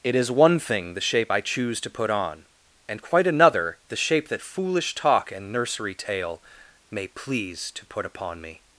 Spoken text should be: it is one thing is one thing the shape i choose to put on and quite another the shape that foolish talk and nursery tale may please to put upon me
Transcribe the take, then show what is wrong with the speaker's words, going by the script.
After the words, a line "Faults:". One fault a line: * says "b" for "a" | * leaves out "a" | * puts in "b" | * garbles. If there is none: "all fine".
it is one thing the shape i choose to put on and quite another the shape that foolish talk and nursery tale may please to put upon me
Faults:
* leaves out "is one thing"